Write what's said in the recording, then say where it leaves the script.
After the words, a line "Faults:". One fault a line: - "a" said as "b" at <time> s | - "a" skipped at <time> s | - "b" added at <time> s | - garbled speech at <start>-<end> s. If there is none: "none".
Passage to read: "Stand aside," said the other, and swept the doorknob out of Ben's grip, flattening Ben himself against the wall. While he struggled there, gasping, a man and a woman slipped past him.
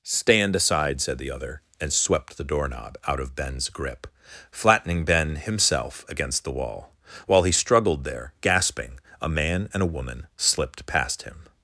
"Stand aside," said the other, and swept the doorknob out of Ben's grip, flattening Ben himself against the wall. While he struggled there, gasping, a man and a woman slipped past him.
Faults:
none